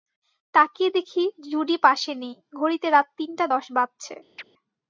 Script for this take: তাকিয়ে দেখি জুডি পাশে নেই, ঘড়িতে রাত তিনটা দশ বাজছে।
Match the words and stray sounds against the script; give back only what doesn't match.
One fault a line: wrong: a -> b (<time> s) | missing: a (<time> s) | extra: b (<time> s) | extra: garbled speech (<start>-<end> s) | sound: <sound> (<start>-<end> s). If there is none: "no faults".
sound: chirp (4.4-4.4 s)